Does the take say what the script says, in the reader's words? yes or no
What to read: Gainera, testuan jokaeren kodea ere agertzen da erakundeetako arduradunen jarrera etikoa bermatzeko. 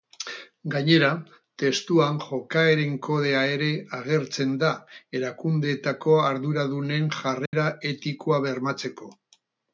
yes